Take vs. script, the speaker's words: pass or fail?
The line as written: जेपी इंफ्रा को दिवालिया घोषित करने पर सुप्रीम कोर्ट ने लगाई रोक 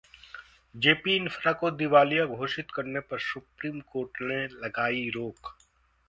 pass